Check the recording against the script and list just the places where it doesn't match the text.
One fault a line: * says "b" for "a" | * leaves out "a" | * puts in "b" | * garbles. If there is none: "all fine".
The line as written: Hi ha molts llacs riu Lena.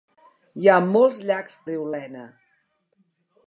all fine